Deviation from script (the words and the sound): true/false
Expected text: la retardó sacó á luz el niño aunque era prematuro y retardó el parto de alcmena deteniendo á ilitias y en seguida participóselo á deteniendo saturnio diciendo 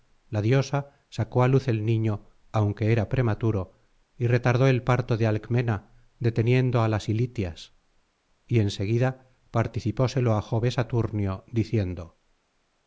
true